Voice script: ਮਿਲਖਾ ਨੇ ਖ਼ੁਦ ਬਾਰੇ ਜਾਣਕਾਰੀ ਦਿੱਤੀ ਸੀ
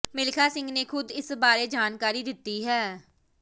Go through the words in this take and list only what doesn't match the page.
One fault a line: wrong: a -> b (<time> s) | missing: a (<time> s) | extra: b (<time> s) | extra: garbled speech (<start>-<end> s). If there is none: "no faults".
extra: ਸਿੰਘ (0.5 s)
extra: ਇਸ (1.1 s)
wrong: ਸੀ -> ਹੈ (2.7 s)